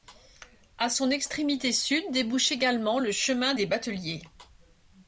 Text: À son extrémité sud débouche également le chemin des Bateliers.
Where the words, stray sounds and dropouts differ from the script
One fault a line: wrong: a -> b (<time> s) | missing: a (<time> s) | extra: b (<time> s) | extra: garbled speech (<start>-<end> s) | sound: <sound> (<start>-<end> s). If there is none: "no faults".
no faults